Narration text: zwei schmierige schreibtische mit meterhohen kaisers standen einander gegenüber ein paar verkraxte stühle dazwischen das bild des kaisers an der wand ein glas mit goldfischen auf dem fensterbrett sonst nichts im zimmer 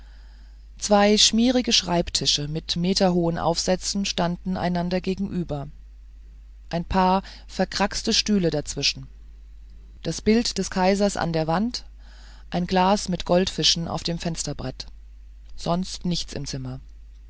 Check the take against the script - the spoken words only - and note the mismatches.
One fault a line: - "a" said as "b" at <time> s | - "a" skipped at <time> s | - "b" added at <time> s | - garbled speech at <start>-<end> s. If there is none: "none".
- "kaisers" said as "aufsätzen" at 3.4 s